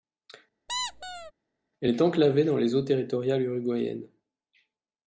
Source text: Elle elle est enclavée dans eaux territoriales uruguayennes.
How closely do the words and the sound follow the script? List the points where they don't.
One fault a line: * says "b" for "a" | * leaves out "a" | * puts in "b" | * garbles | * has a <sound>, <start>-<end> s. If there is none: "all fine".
* has a squeak, 0.7-1.3 s
* leaves out "elle"
* puts in "les"